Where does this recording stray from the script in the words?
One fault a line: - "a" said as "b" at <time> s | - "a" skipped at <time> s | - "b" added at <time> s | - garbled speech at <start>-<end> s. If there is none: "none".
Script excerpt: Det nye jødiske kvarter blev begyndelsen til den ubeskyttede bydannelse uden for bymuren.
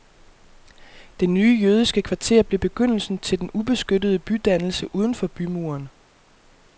none